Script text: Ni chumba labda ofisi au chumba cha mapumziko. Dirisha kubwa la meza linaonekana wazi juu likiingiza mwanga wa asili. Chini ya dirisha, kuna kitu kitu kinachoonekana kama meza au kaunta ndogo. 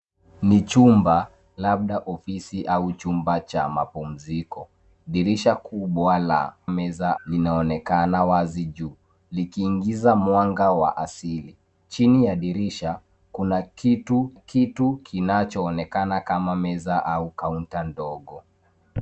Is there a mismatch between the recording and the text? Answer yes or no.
no